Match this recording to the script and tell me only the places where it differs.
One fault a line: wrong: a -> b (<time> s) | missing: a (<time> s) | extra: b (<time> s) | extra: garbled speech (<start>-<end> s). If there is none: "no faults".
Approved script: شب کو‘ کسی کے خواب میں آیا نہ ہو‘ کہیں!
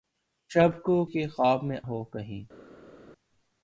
missing: کسی (1.1 s)
missing: آیا نہ (1.8 s)